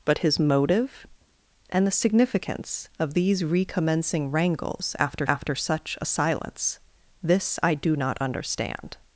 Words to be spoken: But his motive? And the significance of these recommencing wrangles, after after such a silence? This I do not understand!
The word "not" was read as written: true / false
true